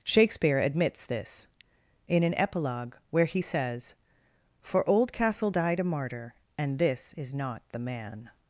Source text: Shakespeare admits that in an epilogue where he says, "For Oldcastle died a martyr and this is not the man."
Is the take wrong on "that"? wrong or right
wrong